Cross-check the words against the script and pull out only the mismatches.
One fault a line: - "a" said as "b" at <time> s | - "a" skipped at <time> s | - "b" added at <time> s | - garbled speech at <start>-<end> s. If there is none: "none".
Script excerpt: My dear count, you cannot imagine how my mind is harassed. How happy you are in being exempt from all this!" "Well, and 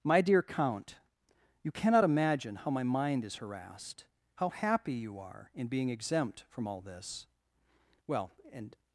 none